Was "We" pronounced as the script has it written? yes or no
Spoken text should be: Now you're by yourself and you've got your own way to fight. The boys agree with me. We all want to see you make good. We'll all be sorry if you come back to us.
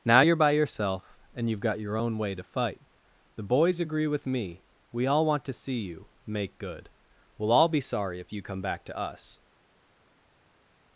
yes